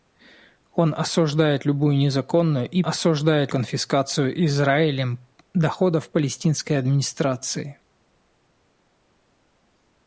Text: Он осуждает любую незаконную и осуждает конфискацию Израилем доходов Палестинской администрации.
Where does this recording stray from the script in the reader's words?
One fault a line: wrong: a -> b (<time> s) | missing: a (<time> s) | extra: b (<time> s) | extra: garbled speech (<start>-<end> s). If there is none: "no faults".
no faults